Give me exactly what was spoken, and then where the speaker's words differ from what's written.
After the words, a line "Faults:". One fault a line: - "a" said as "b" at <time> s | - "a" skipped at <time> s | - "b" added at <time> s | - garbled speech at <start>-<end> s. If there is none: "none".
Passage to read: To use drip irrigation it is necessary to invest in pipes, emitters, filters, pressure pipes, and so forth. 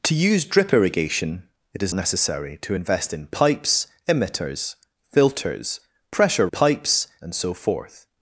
To use drip irrigation it is necessary to invest in pipes, emitters, filters, pressure pipes, and so forth.
Faults:
none